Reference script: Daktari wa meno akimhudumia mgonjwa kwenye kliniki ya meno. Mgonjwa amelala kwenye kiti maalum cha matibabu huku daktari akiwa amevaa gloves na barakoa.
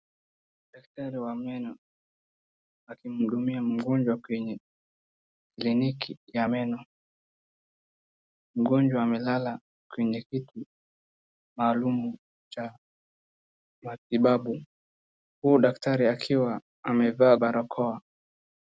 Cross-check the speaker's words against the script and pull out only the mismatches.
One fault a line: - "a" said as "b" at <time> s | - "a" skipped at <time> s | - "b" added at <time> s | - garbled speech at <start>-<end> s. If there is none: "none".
- "gloves na" skipped at 17.4 s